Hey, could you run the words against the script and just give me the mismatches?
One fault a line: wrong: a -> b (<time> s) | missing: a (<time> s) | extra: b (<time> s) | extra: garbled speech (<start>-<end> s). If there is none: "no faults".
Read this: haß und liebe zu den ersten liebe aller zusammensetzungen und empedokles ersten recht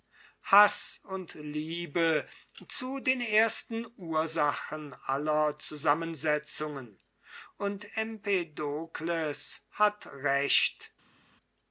wrong: liebe -> ursachen (4.0 s)
wrong: ersten -> hat (9.7 s)